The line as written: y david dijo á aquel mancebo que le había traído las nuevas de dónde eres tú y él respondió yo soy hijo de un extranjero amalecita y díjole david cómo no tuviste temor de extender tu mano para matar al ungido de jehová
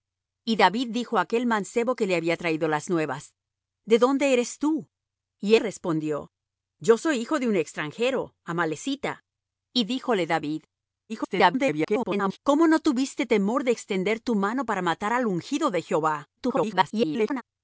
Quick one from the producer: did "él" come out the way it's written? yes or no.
no